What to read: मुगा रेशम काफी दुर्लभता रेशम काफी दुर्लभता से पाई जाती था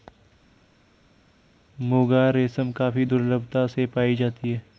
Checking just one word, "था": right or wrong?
wrong